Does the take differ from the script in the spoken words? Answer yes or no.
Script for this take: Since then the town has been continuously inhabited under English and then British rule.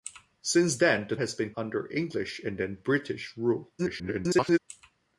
yes